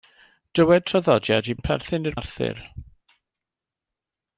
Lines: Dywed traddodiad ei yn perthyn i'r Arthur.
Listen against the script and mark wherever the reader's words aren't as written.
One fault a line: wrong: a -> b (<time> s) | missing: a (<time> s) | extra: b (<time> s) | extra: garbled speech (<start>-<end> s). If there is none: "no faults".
no faults